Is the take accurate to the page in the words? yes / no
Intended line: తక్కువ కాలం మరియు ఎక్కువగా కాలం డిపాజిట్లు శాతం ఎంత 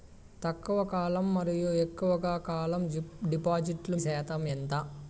yes